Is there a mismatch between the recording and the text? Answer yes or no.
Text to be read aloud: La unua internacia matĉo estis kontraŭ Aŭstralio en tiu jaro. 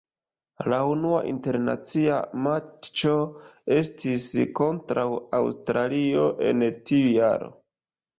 no